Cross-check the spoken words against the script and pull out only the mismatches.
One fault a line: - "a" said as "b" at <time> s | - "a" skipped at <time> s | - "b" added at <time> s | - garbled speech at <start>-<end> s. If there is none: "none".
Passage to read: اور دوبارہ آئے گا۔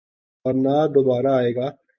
- "نہ" added at 0.5 s